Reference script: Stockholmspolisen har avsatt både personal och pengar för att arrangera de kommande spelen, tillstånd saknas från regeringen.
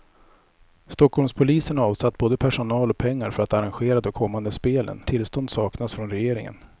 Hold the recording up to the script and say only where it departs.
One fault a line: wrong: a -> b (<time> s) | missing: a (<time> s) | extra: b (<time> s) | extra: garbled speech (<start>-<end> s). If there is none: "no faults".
no faults